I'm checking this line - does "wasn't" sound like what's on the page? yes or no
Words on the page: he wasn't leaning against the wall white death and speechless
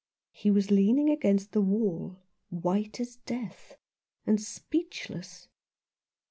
no